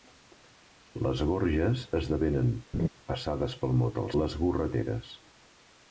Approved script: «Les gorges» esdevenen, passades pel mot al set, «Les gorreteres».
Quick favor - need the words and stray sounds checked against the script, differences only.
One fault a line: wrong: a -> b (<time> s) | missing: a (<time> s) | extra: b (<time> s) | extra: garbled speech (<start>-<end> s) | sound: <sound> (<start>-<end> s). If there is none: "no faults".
sound: laugh (2.7-2.9 s)
missing: set (4.1 s)